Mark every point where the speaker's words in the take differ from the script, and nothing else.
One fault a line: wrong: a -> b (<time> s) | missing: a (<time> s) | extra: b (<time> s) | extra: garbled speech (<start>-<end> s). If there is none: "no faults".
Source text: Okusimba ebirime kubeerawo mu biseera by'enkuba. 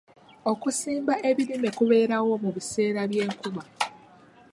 no faults